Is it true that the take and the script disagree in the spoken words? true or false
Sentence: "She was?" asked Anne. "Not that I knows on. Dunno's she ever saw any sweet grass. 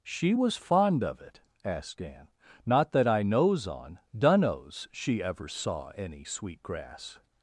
true